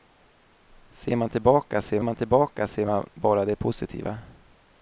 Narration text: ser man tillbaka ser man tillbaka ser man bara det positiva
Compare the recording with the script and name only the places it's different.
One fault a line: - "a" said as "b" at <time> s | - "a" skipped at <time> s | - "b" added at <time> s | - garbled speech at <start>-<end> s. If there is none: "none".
none